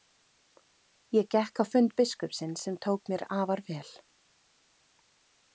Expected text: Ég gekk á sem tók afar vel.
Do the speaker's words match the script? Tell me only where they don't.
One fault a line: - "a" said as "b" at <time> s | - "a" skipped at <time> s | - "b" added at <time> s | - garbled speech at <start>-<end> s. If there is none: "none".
- "fund biskupsins" added at 1.7 s
- "mér" added at 3.1 s